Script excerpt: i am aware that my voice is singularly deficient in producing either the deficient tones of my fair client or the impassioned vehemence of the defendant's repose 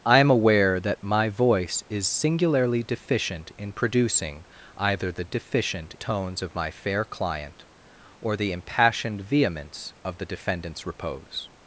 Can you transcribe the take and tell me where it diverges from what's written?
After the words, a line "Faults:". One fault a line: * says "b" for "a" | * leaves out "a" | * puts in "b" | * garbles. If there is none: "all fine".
i am aware that my voice is singularly deficient in producing either the deficient tones of my fair client or the impassioned vehemence of the defendant's repose
Faults:
all fine